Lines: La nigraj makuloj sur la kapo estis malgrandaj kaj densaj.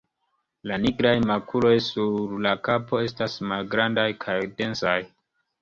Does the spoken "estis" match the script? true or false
false